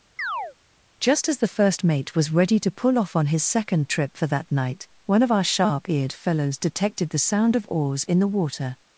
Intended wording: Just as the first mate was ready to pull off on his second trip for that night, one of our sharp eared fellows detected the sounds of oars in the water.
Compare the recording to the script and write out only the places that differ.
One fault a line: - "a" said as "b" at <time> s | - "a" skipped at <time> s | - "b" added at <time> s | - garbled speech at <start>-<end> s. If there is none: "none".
- "sounds" said as "sound" at 7.2 s